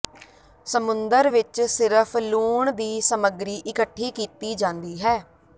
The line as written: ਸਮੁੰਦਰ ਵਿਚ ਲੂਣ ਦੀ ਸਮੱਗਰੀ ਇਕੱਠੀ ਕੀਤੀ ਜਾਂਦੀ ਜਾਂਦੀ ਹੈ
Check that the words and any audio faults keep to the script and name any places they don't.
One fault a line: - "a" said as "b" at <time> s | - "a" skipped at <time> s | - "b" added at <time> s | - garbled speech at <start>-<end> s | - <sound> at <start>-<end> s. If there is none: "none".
- "ਸਿਰਫ" added at 1.6 s
- "ਜਾਂਦੀ" skipped at 5.0 s